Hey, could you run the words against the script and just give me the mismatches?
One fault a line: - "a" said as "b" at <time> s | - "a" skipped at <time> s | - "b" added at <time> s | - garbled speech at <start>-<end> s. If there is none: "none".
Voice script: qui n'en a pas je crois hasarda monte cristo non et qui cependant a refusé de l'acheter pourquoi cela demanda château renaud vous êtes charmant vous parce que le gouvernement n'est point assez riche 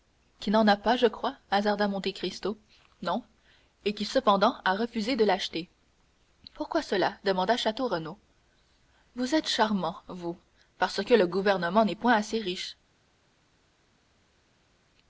none